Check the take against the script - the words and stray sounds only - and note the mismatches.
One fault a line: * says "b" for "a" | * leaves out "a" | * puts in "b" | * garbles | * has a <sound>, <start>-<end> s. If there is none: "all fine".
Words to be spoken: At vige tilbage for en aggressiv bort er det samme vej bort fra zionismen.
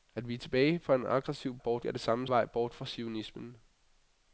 all fine